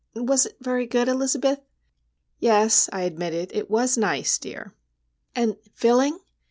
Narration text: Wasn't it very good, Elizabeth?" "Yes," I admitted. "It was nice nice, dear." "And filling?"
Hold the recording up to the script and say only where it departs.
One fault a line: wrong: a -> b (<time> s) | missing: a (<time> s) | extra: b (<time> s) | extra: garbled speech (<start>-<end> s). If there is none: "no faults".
wrong: Wasn't -> Was (0.1 s)
missing: nice (4.4 s)